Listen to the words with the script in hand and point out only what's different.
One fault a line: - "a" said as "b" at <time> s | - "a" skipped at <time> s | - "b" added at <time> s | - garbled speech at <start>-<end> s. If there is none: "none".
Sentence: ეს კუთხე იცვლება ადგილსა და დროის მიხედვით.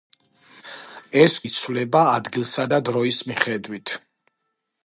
- "კუთხე" skipped at 1.4 s